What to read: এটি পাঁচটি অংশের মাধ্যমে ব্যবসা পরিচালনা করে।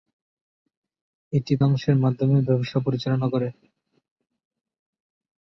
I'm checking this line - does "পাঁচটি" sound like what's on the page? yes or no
no